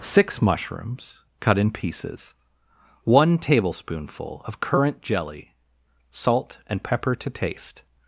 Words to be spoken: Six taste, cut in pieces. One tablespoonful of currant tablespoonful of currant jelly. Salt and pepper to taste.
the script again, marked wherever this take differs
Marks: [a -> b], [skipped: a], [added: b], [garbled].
Six [taste, -> mushrooms] cut in pieces. One tablespoonful of currant [skipped: tablespoonful of currant] jelly. Salt and pepper to taste.